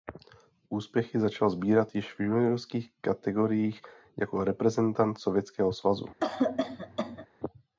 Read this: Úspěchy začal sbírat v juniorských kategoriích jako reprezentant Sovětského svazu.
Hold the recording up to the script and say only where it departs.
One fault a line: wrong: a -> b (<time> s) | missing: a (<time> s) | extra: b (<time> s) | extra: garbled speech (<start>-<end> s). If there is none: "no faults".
extra: již (1.9 s)